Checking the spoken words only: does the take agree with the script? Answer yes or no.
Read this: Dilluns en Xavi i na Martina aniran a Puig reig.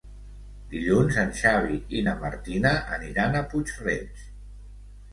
yes